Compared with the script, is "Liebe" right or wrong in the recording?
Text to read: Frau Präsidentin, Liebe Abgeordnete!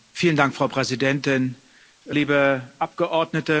right